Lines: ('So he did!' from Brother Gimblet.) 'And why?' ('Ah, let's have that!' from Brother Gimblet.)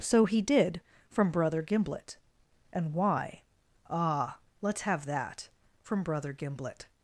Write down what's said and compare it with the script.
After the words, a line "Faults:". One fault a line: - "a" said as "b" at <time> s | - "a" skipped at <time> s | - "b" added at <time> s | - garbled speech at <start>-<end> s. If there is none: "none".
('So he did!' from Brother Gimblet.) 'And why?' ('Ah, let's have that!' from Brother Gimblet.)
Faults:
none